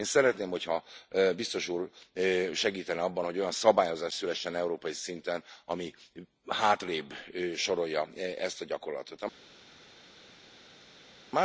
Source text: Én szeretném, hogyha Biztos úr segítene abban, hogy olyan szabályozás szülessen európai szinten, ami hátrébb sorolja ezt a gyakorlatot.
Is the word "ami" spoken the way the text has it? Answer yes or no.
yes